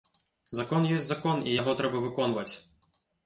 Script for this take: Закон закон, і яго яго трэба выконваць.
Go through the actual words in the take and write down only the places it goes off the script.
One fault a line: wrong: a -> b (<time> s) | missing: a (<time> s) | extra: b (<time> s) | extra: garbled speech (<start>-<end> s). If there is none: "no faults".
extra: ёсць (0.9 s)
missing: яго (1.7 s)